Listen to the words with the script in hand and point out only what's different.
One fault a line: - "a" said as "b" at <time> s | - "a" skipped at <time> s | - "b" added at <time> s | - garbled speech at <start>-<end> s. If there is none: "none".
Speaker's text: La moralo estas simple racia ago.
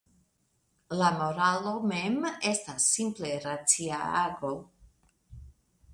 - "mem" added at 1.9 s